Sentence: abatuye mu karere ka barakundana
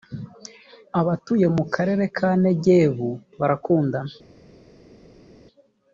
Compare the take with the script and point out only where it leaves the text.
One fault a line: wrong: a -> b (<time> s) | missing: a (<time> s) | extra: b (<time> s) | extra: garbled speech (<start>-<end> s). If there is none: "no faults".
extra: negebu (2.4 s)